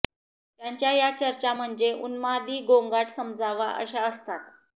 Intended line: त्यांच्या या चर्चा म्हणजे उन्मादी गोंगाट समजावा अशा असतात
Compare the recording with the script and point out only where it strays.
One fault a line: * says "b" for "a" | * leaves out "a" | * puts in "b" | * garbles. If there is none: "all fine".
all fine